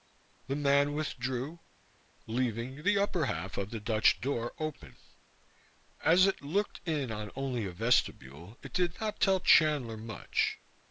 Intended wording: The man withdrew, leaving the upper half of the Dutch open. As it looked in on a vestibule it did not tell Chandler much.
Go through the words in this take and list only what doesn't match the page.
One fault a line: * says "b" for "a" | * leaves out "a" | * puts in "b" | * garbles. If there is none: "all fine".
* puts in "door"
* puts in "only"